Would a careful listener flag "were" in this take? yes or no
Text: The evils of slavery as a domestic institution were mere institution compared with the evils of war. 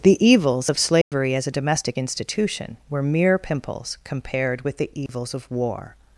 no